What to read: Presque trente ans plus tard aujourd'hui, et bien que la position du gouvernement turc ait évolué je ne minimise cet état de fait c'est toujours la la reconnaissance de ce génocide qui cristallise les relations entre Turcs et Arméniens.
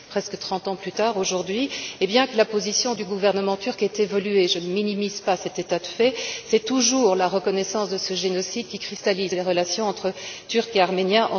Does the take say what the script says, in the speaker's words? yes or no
no